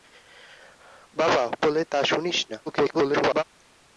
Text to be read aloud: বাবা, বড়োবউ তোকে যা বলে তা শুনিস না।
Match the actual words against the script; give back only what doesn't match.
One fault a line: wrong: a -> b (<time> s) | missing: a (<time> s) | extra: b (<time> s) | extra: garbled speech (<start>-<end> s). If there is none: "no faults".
missing: বড়োবউ তোকে যা (1.4 s)
extra: garbled speech (2.7-3.4 s)